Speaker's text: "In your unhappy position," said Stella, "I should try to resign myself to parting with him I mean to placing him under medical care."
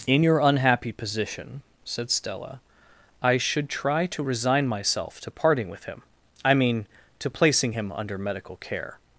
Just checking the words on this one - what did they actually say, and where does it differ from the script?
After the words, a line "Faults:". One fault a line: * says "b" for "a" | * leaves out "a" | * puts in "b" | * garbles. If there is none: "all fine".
"In your unhappy position," said Stella, "I should try to resign myself to parting with him I mean to placing him under medical care."
Faults:
all fine